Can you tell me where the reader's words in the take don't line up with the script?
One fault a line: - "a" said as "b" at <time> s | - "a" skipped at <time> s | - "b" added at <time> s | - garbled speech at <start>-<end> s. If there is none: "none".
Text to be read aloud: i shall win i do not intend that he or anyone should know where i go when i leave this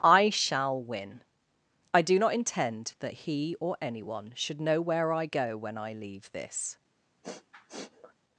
none